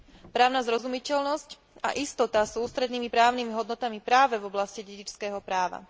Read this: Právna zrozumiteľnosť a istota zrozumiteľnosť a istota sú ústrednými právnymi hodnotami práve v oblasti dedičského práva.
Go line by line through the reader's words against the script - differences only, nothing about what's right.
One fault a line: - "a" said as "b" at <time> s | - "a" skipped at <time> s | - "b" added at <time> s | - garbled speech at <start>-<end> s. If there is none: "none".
- "zrozumiteľnosť a istota" skipped at 2.5 s